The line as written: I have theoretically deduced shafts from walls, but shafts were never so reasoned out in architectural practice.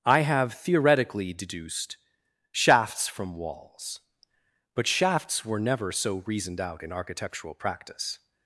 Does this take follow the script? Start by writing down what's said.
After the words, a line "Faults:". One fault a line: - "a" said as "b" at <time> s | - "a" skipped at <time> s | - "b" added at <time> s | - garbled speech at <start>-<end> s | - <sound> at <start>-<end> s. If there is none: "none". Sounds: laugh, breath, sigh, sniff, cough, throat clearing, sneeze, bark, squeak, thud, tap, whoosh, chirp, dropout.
I have theoretically deduced shafts from walls, but shafts were never so reasoned out in architectural practice.
Faults:
none